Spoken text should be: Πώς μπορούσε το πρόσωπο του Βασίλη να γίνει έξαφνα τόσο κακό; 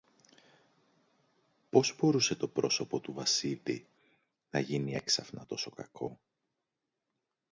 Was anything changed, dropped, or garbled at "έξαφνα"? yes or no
no